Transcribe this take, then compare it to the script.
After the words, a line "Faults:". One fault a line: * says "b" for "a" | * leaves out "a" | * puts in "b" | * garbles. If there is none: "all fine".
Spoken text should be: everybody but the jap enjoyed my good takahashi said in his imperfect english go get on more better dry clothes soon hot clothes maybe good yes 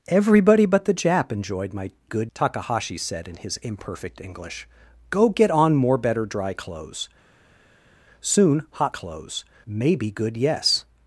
everybody but the jap enjoyed my good takahashi said in his imperfect english go get on more better dry clothes soon hot clothes maybe good yes
Faults:
all fine